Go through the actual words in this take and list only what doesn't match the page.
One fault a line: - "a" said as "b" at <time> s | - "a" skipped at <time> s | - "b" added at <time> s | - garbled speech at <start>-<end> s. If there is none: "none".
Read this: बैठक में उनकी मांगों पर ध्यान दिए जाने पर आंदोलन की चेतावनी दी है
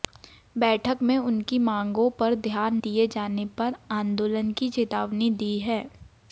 none